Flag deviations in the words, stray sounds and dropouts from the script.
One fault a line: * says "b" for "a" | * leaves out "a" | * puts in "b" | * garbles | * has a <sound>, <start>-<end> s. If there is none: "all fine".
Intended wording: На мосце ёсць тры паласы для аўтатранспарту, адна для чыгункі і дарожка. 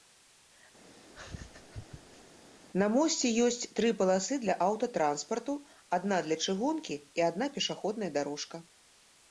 * has a laugh, 0.9-2.4 s
* puts in "адна пешаходная"